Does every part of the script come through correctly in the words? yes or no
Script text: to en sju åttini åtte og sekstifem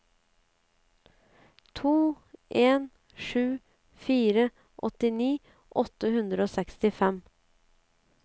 no